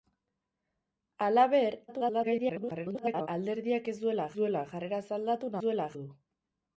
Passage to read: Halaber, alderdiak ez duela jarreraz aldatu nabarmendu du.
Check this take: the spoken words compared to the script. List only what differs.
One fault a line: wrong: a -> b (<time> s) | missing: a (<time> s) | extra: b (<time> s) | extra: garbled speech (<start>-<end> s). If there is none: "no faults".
extra: garbled speech (1.9-3.3 s)
extra: duela (4.4 s)
wrong: nabarmendu -> duela (5.6 s)